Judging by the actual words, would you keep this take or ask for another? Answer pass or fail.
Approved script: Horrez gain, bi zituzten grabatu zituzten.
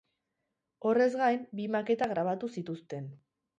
fail